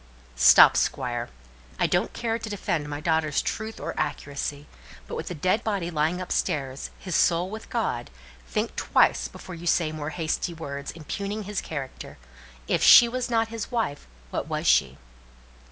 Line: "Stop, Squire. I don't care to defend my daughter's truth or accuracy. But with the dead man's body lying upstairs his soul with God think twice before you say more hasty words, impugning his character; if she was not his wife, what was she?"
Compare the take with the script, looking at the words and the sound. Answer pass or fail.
fail